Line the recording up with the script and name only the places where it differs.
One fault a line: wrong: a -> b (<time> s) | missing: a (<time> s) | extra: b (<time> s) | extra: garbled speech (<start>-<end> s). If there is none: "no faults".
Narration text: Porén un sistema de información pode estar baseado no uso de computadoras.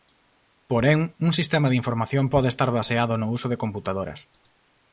no faults